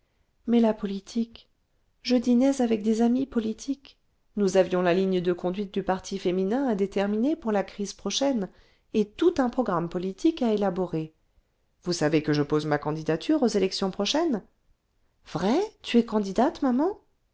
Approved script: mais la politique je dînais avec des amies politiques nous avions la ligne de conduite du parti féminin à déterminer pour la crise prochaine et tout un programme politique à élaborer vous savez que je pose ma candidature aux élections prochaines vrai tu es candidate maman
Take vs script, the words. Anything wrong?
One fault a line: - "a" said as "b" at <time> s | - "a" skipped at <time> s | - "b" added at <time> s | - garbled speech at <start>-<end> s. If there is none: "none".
none